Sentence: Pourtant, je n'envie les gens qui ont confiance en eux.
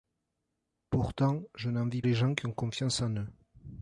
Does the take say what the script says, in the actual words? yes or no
yes